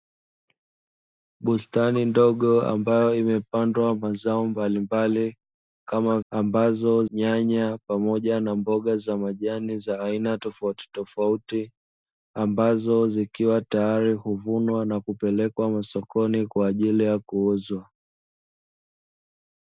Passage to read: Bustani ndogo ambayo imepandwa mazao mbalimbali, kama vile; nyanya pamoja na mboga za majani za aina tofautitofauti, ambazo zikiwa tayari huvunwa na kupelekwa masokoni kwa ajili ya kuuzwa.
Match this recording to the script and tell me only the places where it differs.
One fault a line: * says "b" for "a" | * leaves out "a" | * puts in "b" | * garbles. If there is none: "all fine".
* says "ambazo" for "vile"